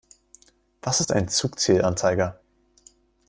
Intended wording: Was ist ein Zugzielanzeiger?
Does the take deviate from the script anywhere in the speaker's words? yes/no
no